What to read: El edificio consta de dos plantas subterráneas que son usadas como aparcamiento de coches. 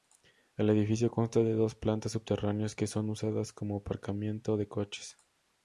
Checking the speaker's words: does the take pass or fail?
pass